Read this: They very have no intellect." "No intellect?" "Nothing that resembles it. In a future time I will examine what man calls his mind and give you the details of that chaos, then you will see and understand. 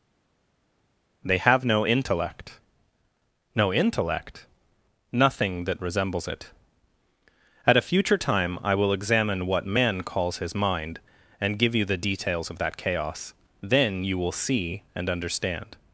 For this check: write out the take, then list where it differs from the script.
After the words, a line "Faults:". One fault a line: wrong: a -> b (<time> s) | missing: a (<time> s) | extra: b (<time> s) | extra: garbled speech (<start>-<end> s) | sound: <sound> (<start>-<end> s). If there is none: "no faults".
They have no intellect." "No intellect?" "Nothing that resembles it. At a future time I will examine what man calls his mind and give you the details of that chaos, then you will see and understand.
Faults:
missing: very (1.4 s)
wrong: In -> At (7.6 s)